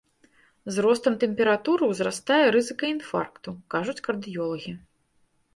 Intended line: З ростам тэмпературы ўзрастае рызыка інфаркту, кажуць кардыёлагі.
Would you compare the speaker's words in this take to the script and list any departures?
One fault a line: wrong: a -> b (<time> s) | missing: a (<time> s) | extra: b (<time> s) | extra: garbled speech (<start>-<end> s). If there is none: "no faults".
no faults